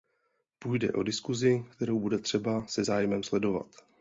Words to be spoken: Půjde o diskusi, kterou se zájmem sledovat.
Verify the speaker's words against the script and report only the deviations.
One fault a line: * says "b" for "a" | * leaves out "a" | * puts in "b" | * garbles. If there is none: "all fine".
* puts in "bude třeba"